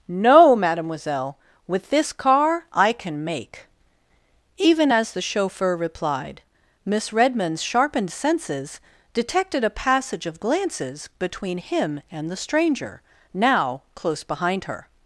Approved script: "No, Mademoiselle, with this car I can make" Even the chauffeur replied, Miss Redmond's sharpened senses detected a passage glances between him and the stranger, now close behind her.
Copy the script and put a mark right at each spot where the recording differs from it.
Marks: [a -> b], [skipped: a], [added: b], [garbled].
"No, Mademoiselle, with this car I can make" Even [added: as] the chauffeur replied, Miss Redmond's sharpened senses detected a passage [added: of] glances between him and the stranger, now close behind her.